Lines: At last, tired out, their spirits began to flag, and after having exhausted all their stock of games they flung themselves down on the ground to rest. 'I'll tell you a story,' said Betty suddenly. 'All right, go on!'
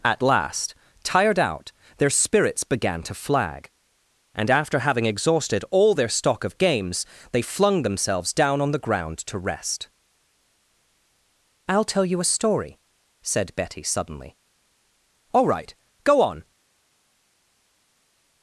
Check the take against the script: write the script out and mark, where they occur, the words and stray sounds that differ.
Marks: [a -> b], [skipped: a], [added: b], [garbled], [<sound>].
At last, tired out, their spirits began to flag, and after having exhausted all their stock of games they flung themselves down on the ground to rest. 'I'll tell you a story,' said Betty suddenly. 'All right, go on!'